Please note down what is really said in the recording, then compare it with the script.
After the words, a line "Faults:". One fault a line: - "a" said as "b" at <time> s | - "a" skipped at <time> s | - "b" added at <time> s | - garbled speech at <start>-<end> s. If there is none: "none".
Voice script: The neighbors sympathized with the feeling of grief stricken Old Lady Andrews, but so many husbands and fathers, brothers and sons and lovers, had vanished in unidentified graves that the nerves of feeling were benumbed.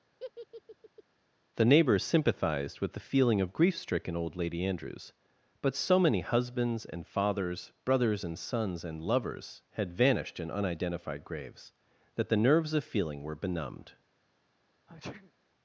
The neighbors sympathized with the feeling of grief stricken Old Lady Andrews, but so many husbands and fathers, brothers and sons and lovers, had vanished in unidentified graves that the nerves of feeling were benumbed.
Faults:
none